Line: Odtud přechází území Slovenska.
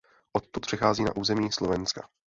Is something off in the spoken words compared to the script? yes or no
yes